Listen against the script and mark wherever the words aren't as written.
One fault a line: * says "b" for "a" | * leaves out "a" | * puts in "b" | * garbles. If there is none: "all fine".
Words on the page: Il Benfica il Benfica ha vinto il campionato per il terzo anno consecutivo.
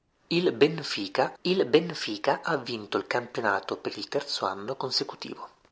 all fine